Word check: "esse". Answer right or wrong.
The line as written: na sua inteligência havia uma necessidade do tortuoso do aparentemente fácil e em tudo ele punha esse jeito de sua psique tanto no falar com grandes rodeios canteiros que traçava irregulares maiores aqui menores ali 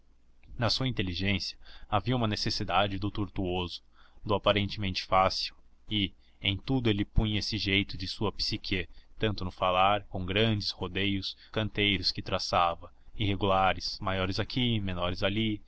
right